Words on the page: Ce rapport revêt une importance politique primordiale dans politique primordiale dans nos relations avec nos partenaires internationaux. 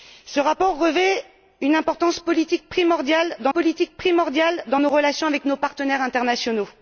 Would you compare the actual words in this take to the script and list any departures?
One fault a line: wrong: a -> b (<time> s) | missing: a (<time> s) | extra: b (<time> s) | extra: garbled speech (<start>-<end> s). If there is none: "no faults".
no faults